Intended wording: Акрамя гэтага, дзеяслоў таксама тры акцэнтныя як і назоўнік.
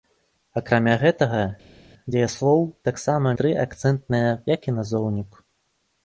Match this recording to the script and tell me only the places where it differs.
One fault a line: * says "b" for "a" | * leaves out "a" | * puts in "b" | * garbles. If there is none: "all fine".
all fine